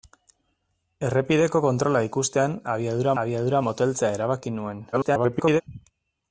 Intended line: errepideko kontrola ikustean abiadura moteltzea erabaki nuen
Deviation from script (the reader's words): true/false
true